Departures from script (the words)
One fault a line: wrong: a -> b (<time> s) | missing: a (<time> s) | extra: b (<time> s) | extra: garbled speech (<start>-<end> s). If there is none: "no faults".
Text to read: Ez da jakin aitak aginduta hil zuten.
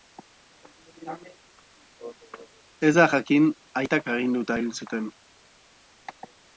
no faults